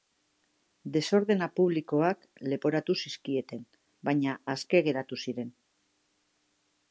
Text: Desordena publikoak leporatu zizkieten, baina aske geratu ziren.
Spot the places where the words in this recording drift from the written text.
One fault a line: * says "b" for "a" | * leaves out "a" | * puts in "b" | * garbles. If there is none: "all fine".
all fine